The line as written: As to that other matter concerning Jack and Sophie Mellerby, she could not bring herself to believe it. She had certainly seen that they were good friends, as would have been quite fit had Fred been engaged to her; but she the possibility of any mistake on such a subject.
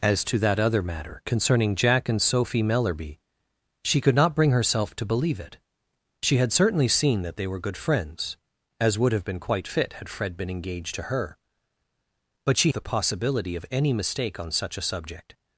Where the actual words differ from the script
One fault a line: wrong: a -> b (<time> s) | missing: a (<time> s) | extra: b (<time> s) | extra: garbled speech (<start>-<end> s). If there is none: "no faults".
no faults